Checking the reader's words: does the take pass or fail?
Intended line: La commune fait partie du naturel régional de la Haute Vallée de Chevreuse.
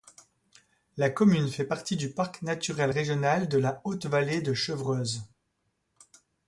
fail